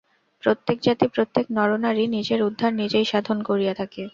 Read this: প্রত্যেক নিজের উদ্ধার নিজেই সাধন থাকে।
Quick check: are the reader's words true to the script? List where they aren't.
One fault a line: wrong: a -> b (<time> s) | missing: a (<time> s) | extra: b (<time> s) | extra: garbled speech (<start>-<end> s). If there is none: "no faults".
extra: জাতি প্রত্যেক নরনারী (0.8 s)
extra: করিয়া (3.5 s)